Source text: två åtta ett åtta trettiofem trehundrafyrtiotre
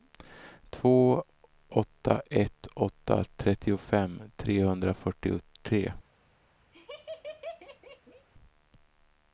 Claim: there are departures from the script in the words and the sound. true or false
true